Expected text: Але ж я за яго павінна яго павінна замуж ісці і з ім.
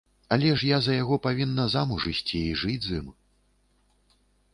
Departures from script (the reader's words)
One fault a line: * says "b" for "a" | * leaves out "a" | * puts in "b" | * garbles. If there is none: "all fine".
* leaves out "яго павінна"
* puts in "жыць"